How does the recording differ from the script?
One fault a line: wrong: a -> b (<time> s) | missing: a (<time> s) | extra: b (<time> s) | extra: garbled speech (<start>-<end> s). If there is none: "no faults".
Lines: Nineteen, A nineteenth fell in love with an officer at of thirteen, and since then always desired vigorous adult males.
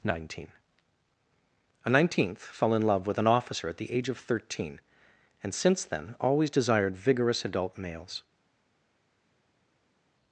extra: the age (3.8 s)